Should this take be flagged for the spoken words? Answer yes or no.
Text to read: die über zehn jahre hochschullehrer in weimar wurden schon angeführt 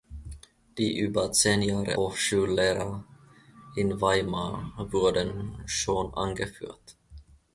no